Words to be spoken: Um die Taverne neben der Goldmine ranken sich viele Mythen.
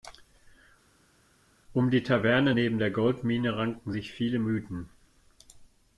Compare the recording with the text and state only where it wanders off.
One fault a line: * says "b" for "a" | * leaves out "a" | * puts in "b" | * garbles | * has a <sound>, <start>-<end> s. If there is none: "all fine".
all fine